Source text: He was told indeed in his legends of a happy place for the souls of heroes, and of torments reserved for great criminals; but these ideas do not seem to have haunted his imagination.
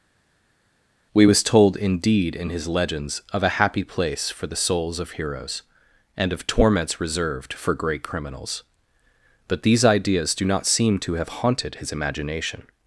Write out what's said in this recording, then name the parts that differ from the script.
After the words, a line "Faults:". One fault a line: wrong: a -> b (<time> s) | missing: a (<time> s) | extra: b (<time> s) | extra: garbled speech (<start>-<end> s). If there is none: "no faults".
We was told indeed in his legends of a happy place for the souls of heroes, and of torments reserved for great criminals; but these ideas do not seem to have haunted his imagination.
Faults:
wrong: He -> We (1.1 s)